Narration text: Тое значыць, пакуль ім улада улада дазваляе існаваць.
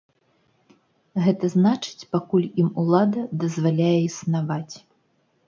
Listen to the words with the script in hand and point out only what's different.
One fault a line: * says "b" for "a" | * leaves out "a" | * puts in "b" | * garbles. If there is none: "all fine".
* says "Гэта" for "Тое"
* leaves out "улада"